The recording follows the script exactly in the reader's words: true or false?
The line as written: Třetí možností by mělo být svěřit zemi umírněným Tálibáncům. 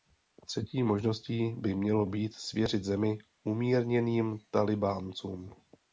true